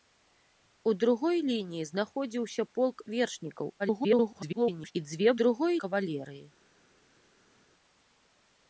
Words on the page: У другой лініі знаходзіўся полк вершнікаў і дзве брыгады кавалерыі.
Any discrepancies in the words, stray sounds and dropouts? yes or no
yes